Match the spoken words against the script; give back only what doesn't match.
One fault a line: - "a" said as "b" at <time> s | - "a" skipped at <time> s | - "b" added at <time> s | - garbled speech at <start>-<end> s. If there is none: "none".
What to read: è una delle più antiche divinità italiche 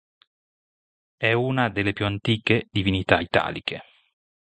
none